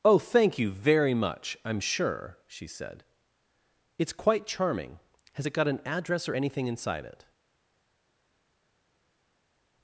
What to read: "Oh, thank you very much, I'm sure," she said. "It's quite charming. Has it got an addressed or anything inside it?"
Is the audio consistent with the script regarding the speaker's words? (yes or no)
no